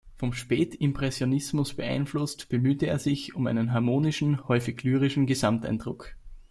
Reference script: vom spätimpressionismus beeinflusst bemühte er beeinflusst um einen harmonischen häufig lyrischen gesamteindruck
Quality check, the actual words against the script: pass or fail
fail